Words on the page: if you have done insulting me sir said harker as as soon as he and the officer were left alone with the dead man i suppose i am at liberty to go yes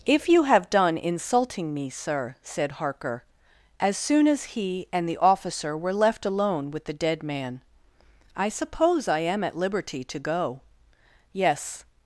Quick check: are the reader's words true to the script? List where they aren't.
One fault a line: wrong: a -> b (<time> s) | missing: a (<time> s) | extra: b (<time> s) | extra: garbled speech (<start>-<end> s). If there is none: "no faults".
missing: as (4.0 s)